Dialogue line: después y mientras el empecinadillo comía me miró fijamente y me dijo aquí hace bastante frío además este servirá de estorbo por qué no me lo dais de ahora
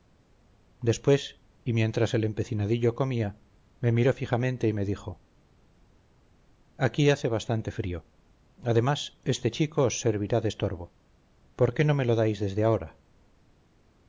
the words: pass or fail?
fail